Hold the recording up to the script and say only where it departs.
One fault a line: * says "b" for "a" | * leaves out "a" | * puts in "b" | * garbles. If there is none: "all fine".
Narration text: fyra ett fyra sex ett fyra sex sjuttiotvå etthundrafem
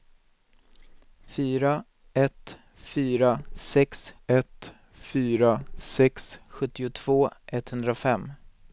all fine